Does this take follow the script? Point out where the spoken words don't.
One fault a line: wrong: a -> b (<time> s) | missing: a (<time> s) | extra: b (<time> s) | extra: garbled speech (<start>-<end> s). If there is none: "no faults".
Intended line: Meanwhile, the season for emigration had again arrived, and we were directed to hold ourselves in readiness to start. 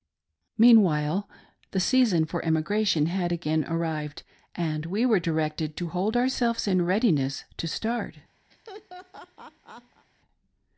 no faults